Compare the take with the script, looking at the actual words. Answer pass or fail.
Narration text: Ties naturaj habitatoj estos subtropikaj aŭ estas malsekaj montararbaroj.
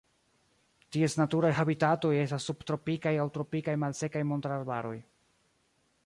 fail